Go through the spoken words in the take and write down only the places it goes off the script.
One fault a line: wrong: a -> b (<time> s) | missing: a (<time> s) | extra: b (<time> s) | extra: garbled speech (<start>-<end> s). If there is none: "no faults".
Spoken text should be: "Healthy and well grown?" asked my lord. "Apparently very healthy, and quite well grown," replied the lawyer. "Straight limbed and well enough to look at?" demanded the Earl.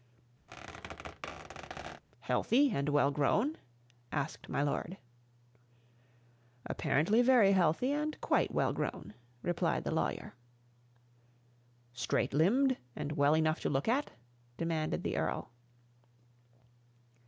no faults